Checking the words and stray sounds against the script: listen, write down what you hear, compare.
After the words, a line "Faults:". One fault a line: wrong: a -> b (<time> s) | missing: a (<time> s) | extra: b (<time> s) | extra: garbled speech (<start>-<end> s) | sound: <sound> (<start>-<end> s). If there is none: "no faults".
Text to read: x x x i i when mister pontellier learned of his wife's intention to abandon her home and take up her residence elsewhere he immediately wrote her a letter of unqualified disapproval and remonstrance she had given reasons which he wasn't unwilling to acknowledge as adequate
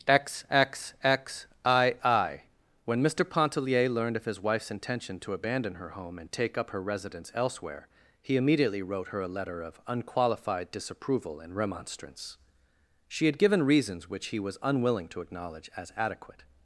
x x x i i when mister pontellier learned of his wife's intention to abandon her home and take up her residence elsewhere he immediately wrote her a letter of unqualified disapproval and remonstrance she had given reasons which he was unwilling to acknowledge as adequate
Faults:
wrong: wasn't -> was (14.4 s)